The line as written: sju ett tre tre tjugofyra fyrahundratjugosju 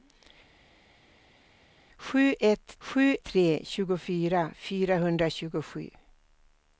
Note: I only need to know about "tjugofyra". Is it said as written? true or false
true